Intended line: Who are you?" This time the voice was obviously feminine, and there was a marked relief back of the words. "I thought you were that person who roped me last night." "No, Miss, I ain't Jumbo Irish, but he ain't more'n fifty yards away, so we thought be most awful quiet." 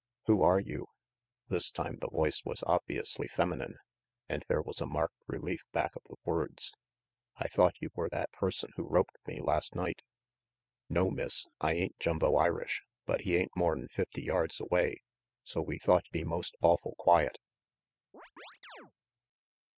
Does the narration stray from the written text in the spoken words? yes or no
no